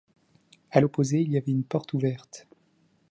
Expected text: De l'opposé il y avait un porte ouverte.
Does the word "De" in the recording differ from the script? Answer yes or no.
yes